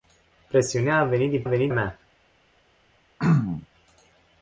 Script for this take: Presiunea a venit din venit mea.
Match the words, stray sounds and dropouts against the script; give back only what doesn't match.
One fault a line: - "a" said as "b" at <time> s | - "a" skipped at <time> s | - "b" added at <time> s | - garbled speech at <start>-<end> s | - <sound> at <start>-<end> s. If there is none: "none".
- throat clearing at 3.2-3.7 s